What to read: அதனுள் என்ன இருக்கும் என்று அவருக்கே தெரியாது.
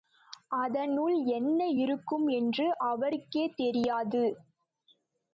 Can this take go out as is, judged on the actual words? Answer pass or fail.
pass